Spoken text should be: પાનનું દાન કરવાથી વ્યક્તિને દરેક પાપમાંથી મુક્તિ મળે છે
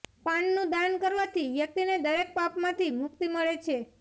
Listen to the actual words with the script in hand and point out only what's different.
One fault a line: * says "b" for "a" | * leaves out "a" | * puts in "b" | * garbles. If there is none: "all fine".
all fine